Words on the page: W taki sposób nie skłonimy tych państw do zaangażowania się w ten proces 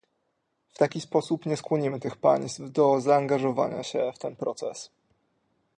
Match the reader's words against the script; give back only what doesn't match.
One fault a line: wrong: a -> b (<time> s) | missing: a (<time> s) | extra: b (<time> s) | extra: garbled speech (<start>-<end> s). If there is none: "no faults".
no faults